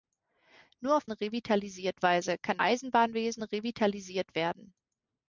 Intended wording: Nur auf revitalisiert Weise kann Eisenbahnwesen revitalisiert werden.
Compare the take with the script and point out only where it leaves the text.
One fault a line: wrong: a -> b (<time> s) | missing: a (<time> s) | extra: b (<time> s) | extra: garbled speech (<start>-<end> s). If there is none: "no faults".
no faults